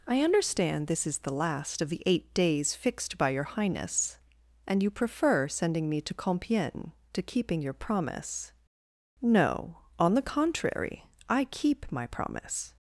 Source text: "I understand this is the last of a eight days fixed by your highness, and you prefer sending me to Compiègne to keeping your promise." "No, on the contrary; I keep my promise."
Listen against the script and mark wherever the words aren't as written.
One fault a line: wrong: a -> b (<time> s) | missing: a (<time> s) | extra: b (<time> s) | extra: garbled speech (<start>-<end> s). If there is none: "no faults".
wrong: a -> the (1.9 s)